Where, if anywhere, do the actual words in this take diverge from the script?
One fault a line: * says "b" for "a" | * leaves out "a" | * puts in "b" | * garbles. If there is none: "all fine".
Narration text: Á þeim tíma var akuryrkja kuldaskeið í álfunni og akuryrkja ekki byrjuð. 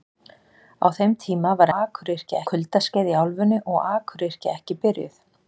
all fine